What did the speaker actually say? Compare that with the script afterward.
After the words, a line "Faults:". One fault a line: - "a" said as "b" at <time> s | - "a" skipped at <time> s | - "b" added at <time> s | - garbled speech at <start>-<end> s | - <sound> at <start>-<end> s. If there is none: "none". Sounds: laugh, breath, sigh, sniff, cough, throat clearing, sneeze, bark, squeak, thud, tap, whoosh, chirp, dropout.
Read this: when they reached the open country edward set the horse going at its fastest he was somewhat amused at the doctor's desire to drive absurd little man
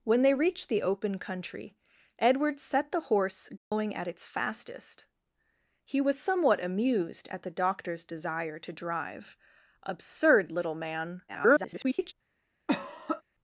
when they reached the open country edward set the horse going at its fastest he was somewhat amused at the doctor's desire to drive absurd little man [garbled]
Faults:
- dropout at 3.6-3.7 s
- garbled speech at 11.3-12.1 s
- cough at 12.7-13.2 s